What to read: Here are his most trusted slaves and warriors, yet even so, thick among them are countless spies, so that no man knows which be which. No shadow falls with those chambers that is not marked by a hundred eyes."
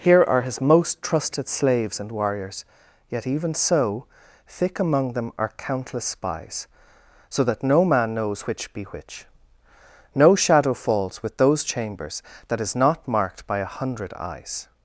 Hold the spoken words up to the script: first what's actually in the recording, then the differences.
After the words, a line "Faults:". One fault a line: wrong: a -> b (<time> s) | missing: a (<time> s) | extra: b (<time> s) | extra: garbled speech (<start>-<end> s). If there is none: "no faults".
Here are his most trusted slaves and warriors, yet even so, thick among them are countless spies, so that no man knows which be which. No shadow falls with those chambers that is not marked by a hundred eyes."
Faults:
no faults